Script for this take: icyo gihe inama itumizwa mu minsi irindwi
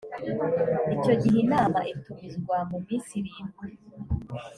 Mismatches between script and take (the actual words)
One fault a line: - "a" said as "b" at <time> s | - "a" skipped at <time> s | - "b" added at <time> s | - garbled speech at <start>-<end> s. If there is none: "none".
none